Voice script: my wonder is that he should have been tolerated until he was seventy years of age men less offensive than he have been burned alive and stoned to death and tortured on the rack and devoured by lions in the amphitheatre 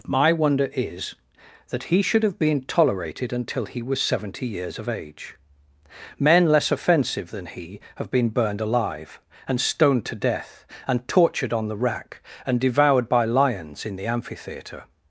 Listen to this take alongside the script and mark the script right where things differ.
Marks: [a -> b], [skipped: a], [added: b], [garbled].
my wonder is that he should have been tolerated until he was seventy years of age men less offensive than he have been burned alive and stoned to death and tortured on the rack and devoured by lions in the amphitheatre